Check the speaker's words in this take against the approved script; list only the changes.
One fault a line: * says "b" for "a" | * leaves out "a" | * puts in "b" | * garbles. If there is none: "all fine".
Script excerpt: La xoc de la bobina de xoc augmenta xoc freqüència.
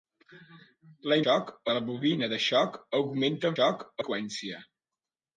all fine